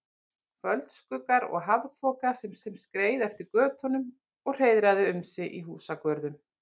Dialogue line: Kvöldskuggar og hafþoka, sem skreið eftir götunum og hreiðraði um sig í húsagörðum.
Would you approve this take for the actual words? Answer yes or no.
no